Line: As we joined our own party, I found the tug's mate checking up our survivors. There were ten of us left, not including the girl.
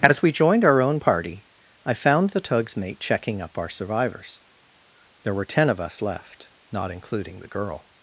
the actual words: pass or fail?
pass